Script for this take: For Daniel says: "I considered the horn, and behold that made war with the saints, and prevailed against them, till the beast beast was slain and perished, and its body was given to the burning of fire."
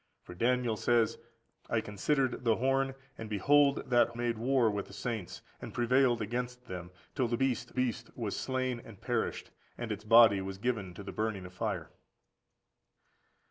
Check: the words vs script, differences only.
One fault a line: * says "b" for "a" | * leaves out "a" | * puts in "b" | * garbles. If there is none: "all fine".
all fine